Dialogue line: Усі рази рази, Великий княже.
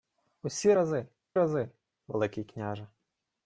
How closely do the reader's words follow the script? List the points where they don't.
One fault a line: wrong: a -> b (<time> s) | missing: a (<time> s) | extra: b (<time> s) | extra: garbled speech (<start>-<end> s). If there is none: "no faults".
no faults